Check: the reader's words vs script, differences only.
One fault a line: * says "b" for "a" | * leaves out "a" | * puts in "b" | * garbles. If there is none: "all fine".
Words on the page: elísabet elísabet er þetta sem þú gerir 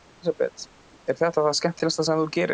* leaves out "elísabet"
* puts in "það skemmtilegasta"